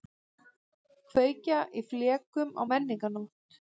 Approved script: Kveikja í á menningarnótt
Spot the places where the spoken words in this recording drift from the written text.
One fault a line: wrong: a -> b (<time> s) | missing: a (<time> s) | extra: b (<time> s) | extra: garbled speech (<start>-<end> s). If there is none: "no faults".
extra: flekum (1.9 s)